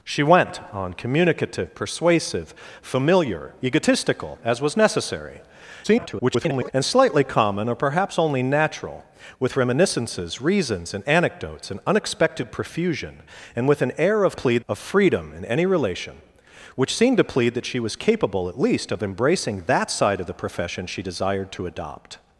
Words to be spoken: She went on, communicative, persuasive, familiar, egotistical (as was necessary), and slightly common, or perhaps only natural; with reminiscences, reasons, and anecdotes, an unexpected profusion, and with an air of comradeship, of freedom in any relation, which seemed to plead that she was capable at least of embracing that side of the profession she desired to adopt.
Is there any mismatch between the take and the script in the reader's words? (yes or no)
yes